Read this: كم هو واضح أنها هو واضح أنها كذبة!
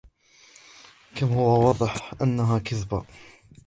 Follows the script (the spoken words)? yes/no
no